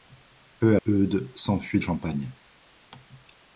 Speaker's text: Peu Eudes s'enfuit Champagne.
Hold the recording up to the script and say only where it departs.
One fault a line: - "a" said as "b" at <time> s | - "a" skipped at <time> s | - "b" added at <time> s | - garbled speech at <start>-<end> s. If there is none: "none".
none